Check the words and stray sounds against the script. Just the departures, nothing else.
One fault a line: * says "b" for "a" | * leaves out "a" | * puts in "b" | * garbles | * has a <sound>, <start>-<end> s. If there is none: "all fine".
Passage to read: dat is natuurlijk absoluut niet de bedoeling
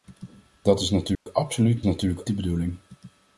* has a dropout, 1.1-1.3 s
* says "natuurlijk" for "niet"